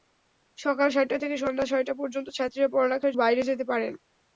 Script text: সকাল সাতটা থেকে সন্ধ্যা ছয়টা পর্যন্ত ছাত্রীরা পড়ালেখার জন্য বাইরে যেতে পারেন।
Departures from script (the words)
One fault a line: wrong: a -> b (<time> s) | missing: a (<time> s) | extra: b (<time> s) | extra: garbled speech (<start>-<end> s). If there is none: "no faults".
missing: জন্য (3.1 s)